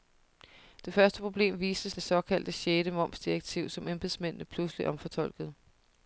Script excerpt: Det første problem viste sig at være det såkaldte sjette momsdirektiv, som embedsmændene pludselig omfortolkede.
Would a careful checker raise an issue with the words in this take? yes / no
yes